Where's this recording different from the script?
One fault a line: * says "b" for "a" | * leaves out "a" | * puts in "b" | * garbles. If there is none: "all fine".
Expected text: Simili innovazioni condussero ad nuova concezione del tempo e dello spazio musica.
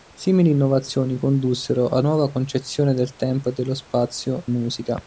all fine